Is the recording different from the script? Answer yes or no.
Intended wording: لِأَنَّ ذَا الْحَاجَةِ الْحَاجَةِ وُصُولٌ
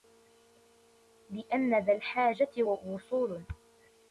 yes